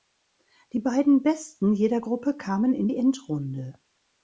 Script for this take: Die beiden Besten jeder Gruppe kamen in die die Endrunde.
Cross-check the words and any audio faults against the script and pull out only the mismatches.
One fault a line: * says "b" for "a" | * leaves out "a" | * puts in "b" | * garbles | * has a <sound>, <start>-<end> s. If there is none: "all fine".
* leaves out "die"